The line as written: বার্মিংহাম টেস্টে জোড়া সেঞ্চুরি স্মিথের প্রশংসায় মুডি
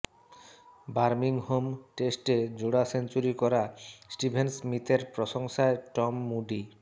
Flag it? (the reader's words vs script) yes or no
yes